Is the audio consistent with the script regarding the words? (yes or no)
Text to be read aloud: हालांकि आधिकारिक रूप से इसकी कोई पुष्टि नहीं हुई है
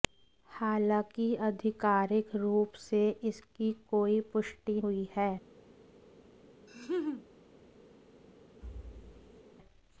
no